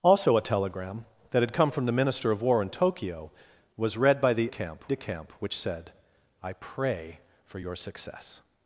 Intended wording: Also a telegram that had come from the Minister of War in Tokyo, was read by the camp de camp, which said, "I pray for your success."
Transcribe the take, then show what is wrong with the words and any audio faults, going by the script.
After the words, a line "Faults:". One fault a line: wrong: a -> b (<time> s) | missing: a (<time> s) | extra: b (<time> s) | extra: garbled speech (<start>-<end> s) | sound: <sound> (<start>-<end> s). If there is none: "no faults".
Also a telegram that had come from the Minister of War in Tokyo, was read by the camp de camp, which said, "I pray for your success."
Faults:
no faults